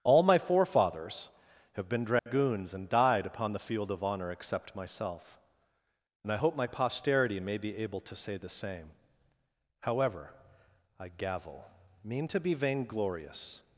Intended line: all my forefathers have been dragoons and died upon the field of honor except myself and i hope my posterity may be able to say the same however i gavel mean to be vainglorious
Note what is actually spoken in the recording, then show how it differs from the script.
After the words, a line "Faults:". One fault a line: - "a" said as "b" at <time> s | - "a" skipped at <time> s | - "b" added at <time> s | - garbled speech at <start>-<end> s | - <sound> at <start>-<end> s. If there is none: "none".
all my forefathers have been dragoons and died upon the field of honor except myself and i hope my posterity may be able to say the same however i gavel mean to be vainglorious
Faults:
- dropout at 2.2-2.3 s